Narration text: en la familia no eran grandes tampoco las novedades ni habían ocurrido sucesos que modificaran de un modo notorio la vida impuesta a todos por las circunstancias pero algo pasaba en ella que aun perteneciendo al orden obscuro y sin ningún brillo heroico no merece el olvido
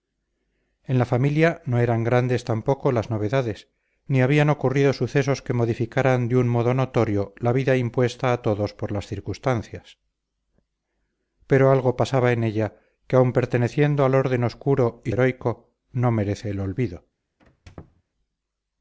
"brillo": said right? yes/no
no